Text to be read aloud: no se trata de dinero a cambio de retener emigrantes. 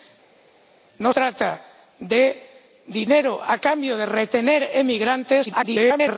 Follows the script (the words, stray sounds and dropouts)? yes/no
no